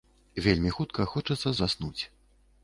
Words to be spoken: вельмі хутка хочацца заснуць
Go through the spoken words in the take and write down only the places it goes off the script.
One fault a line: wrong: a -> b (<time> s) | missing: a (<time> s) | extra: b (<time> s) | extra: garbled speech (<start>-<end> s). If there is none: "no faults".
no faults